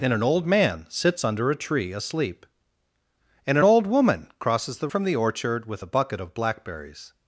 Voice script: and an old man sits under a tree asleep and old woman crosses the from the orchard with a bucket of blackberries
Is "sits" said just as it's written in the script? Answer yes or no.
yes